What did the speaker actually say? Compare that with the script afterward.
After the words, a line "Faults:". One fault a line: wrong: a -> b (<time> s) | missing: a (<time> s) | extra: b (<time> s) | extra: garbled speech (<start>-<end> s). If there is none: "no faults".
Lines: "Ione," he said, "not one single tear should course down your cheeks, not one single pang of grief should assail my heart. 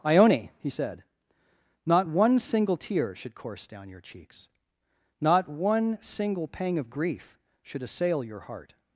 "Ione," he said, "not one single tear should course down your cheeks, not one single pang of grief should assail your heart.
Faults:
wrong: my -> your (8.2 s)